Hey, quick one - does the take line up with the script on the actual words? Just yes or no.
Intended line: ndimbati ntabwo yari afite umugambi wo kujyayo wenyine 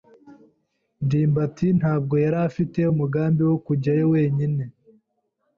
yes